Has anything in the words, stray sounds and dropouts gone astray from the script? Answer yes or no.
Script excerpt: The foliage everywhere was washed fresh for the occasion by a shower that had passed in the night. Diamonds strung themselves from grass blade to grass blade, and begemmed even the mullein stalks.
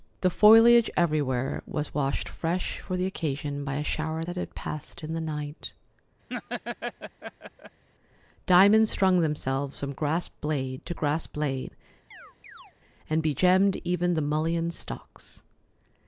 yes